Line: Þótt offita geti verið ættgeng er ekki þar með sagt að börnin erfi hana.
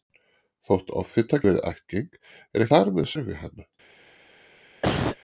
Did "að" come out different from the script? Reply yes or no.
yes